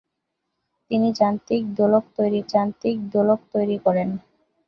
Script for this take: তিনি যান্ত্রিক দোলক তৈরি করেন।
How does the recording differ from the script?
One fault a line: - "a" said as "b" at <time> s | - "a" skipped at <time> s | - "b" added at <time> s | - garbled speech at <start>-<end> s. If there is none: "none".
- "যান্ত্রিক দোলক তৈরি" added at 2.5 s